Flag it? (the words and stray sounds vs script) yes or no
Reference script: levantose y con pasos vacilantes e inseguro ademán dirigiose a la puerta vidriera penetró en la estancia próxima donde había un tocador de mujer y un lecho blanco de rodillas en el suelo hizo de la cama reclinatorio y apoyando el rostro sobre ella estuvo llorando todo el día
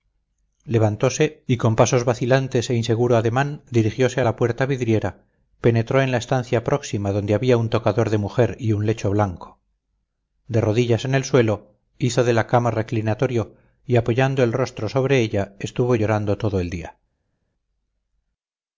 no